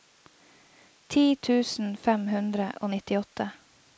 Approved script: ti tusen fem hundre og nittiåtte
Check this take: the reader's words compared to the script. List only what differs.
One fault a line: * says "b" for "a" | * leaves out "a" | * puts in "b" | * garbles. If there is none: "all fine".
all fine